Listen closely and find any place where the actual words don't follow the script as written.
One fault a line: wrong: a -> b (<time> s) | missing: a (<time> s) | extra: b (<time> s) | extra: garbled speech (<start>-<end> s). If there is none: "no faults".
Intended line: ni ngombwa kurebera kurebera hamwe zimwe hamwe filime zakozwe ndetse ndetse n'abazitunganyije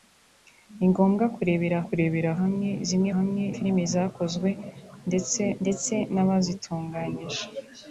no faults